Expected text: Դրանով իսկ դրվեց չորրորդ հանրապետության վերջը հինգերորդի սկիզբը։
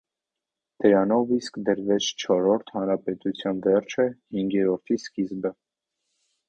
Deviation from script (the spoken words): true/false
false